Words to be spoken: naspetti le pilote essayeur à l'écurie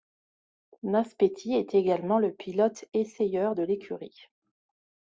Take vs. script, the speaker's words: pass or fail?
fail